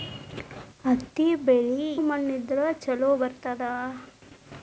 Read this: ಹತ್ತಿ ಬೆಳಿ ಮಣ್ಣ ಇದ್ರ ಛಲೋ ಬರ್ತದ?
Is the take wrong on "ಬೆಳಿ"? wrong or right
right